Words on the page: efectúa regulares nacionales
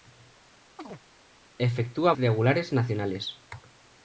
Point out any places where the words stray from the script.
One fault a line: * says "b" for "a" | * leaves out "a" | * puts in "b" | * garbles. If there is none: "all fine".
all fine